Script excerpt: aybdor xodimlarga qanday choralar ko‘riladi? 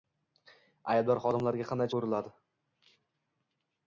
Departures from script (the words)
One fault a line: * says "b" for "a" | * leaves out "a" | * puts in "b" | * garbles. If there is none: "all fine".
* leaves out "choralar"